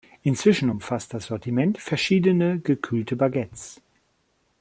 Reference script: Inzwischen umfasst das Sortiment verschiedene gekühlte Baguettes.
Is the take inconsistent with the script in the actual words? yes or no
no